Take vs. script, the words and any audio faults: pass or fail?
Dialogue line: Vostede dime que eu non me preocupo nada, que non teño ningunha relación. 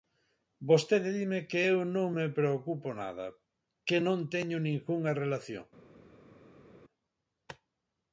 pass